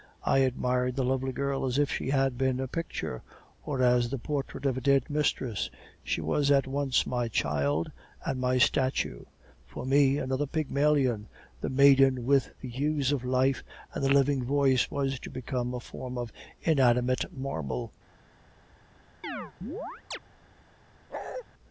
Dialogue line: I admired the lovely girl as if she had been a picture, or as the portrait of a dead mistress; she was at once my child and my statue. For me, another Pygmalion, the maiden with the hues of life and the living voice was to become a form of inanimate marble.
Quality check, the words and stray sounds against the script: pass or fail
fail